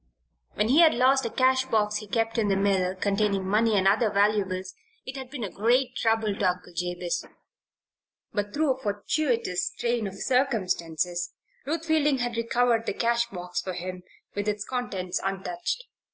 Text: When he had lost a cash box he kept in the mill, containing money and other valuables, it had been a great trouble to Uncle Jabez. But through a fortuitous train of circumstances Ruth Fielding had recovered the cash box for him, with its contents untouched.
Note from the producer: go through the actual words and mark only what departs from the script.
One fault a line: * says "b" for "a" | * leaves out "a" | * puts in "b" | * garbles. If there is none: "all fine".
all fine